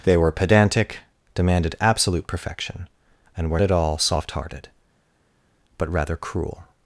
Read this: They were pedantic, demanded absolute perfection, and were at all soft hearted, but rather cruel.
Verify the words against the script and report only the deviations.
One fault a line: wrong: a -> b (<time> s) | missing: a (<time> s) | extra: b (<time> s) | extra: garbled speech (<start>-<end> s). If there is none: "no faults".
no faults